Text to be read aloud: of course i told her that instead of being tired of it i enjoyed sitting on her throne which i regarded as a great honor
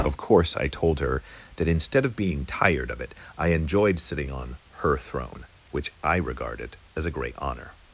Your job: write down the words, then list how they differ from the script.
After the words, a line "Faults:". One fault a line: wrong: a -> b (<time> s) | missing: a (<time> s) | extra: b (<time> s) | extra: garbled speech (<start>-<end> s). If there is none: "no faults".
of course i told her that instead of being tired of it i enjoyed sitting on her throne which i regarded as a great honor
Faults:
no faults